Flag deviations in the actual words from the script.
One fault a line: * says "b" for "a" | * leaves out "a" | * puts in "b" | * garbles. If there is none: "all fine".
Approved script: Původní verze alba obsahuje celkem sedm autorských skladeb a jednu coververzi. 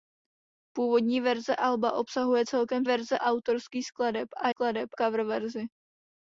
* says "verze" for "sedm"
* says "skladeb" for "jednu"